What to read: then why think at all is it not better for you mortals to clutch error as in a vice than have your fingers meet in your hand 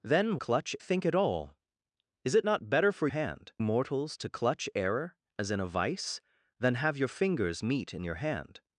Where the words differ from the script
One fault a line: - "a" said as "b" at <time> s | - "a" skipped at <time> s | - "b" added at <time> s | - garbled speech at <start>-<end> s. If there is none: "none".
- "why" said as "clutch" at 0.4 s
- "you" said as "hand" at 3.1 s